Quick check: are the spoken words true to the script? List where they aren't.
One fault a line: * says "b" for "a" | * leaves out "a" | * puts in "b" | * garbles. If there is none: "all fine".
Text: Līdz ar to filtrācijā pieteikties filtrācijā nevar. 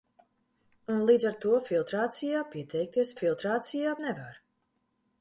all fine